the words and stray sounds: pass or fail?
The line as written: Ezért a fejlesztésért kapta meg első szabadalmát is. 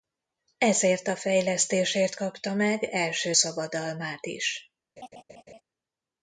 fail